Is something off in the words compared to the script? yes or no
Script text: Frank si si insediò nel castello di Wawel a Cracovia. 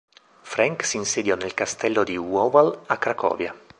yes